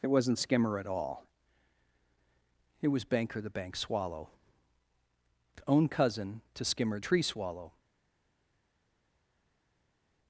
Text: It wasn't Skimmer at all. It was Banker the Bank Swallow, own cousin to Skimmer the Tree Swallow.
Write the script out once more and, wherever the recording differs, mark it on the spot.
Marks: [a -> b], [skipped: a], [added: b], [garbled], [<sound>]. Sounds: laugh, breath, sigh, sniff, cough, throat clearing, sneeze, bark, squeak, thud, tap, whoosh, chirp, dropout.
It wasn't Skimmer at all. It was Banker the Bank Swallow, own cousin to Skimmer [skipped: the] Tree Swallow.